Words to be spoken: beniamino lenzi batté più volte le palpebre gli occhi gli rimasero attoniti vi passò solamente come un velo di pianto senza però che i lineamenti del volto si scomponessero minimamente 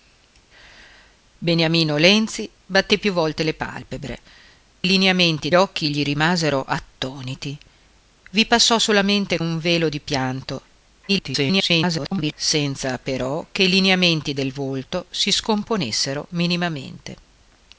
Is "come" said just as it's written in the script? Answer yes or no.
no